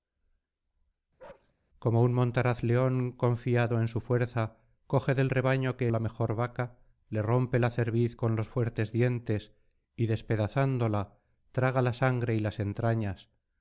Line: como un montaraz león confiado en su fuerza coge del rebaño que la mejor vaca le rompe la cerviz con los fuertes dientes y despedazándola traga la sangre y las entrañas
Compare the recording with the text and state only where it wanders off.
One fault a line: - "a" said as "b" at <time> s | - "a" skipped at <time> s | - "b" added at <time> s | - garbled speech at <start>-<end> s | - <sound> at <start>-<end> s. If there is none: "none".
- bark at 1.2-1.5 s